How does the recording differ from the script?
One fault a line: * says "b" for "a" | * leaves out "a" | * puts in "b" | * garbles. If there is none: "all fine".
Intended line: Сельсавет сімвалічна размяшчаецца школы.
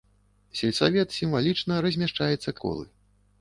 all fine